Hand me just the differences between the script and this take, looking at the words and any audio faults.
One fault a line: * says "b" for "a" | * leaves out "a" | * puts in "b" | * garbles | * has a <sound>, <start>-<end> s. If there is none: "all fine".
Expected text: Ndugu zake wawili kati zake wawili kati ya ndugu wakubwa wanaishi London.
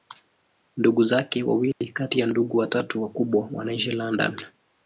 * has a dropout, 1.7-1.8 s
* leaves out "zake wawili kati"
* puts in "watatu"